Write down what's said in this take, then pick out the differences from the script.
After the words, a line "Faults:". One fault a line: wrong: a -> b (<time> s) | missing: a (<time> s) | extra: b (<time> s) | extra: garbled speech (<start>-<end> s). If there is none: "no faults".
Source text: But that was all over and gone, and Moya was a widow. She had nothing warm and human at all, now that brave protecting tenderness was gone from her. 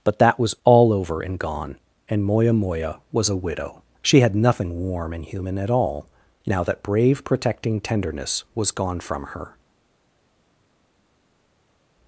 But that was all over and gone, and Moya Moya was a widow. She had nothing warm and human at all, now that brave protecting tenderness was gone from her.
Faults:
extra: Moya (2.5 s)